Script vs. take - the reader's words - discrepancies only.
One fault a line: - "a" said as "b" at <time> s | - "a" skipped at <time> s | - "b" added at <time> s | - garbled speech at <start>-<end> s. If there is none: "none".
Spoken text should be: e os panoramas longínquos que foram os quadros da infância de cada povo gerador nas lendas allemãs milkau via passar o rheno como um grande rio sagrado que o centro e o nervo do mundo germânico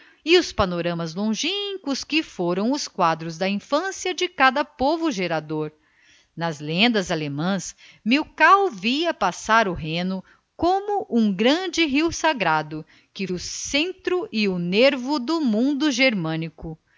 none